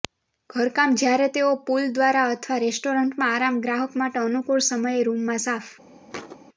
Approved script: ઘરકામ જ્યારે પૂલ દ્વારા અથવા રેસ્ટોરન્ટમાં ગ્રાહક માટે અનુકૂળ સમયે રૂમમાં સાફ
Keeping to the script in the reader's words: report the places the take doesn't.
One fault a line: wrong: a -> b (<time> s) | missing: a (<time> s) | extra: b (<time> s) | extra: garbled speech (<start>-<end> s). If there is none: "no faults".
extra: તેઓ (1.4 s)
extra: આરામ (3.3 s)